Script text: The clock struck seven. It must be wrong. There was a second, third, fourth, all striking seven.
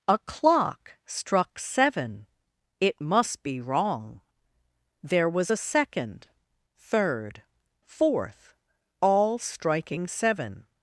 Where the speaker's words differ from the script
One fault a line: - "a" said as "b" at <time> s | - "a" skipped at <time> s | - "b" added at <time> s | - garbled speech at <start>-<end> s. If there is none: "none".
- "The" said as "A" at 0.1 s